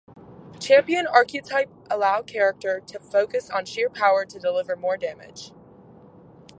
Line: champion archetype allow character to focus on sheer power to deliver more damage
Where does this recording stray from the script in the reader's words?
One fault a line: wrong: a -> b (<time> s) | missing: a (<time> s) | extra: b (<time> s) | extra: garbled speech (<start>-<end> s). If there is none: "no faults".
no faults